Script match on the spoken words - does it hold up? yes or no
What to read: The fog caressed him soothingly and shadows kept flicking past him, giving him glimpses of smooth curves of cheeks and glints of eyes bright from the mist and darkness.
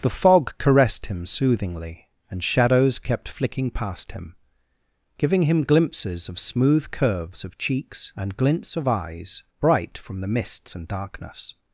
no